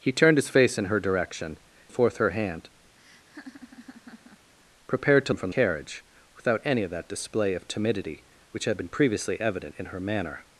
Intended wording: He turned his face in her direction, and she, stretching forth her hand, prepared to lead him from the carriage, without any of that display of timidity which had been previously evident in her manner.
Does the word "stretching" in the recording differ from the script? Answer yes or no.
yes